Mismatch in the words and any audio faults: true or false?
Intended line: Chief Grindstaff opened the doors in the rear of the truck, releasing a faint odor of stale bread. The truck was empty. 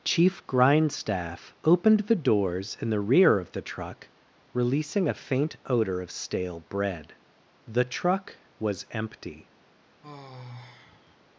true